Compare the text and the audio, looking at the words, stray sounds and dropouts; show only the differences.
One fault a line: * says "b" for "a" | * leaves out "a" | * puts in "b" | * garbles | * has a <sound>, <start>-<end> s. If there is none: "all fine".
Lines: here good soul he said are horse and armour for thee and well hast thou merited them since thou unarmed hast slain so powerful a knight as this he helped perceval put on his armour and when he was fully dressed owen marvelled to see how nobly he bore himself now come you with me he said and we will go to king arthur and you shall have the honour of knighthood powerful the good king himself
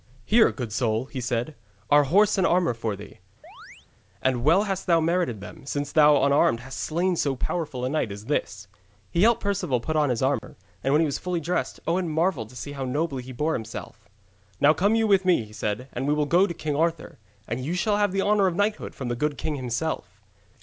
* has a chirp, 3.4-3.9 s
* has a dropout, 10.4-10.4 s
* says "from" for "powerful"